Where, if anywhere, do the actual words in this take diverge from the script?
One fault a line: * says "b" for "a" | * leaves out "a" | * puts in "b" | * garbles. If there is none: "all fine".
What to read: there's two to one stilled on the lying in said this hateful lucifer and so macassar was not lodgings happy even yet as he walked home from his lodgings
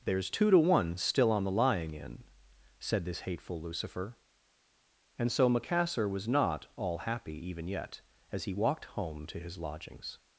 * says "still" for "stilled"
* says "all" for "lodgings"
* says "to" for "from"